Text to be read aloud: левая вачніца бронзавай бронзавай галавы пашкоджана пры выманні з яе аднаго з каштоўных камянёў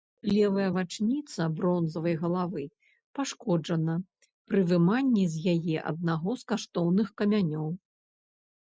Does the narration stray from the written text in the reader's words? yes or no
yes